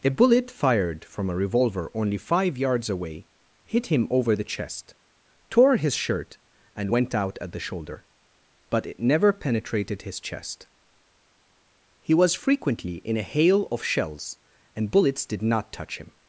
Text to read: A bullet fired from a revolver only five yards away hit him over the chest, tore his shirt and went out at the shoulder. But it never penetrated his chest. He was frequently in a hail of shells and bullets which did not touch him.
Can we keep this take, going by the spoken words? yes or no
no